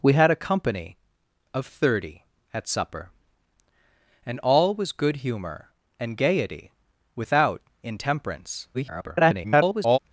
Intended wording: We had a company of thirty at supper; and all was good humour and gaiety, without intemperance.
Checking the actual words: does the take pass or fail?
fail